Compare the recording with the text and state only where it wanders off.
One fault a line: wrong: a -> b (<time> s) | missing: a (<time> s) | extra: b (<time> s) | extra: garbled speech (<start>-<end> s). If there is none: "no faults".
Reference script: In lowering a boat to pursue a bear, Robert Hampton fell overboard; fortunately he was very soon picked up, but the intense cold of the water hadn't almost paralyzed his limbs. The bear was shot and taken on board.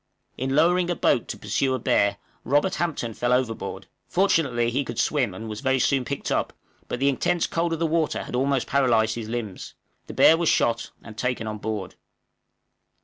extra: could swim and (4.8 s)
wrong: hadn't -> had (8.2 s)